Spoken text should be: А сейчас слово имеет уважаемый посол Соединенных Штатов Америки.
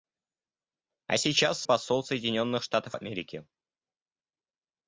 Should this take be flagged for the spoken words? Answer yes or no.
yes